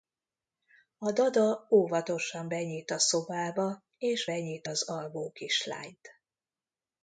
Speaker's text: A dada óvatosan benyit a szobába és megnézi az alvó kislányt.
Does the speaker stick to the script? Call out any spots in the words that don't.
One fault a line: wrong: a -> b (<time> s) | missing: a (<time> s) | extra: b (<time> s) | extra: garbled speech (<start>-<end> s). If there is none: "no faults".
wrong: megnézi -> benyit (4.2 s)